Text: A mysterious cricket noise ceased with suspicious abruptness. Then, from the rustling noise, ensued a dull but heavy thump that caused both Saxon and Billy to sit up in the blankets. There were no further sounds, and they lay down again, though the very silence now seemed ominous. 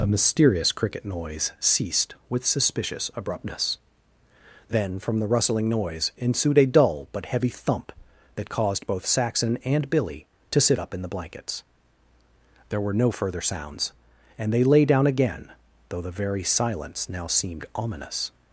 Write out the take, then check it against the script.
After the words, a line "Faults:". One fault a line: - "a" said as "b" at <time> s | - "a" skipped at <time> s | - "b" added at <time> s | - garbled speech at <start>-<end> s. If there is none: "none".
A mysterious cricket noise ceased with suspicious abruptness. Then, from the rustling noise, ensued a dull but heavy thump that caused both Saxon and Billy to sit up in the blankets. There were no further sounds, and they lay down again, though the very silence now seemed ominous.
Faults:
none